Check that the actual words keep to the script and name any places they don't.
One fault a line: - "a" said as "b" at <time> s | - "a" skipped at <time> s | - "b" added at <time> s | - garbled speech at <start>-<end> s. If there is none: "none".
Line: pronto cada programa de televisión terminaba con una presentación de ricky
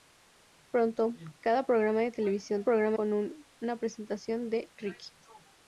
- "terminaba" said as "programa" at 2.6 s